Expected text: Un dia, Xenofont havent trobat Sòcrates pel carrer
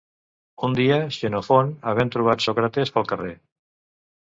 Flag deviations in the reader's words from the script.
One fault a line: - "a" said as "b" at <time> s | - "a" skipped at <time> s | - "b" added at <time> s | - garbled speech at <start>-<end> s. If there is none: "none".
none